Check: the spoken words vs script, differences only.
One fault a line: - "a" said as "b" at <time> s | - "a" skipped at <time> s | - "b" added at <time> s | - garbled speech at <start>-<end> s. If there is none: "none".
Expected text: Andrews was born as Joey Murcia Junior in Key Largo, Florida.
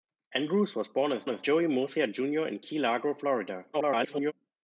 - "as" added at 1.3 s
- garbled speech at 3.7-4.3 s